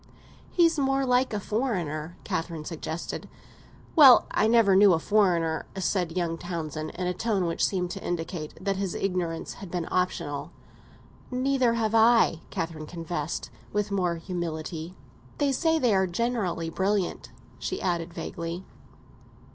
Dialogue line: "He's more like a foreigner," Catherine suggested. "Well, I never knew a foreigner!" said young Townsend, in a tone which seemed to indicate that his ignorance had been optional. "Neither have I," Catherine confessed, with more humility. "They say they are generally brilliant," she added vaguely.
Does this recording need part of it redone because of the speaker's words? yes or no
no